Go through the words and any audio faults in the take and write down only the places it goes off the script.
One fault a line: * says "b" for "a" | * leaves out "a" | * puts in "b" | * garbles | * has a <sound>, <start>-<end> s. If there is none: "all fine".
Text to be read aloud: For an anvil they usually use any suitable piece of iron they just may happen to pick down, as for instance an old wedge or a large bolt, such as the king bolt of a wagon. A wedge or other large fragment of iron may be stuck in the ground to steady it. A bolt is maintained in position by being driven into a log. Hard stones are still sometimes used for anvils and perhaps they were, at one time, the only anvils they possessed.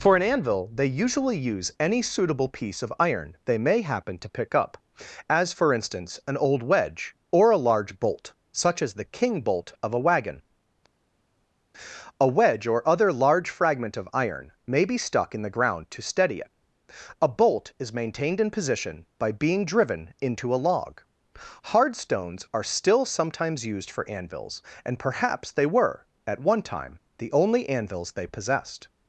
* leaves out "just"
* says "up" for "down"